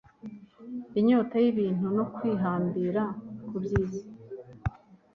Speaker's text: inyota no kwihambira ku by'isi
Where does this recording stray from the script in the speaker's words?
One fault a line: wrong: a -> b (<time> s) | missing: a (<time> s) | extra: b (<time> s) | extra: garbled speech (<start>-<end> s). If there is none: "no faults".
extra: y'ibintu (1.4 s)